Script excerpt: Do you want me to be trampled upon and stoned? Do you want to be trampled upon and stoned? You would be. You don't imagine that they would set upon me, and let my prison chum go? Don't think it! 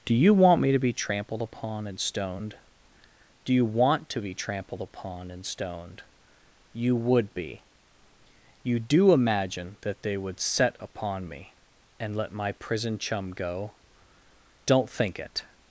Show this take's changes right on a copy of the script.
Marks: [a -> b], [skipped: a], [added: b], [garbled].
Do you want me to be trampled upon and stoned? Do you want to be trampled upon and stoned? You would be. You [don't -> do] imagine that they would set upon me, and let my prison chum go? Don't think it!